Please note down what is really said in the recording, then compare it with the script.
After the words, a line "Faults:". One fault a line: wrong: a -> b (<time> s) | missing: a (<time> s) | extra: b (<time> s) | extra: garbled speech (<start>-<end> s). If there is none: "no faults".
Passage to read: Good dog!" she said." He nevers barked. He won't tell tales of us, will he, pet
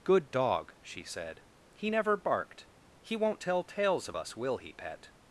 Good dog!" she said." He never barked. He won't tell tales of us, will he, pet
Faults:
wrong: nevers -> never (1.9 s)